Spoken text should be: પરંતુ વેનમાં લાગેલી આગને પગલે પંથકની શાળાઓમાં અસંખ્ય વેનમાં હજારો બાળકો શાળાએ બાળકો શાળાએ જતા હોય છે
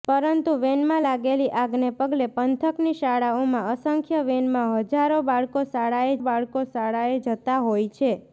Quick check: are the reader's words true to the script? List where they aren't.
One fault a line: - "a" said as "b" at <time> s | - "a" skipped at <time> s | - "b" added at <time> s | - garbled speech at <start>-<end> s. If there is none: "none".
none